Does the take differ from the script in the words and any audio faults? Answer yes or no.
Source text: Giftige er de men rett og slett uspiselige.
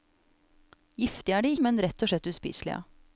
no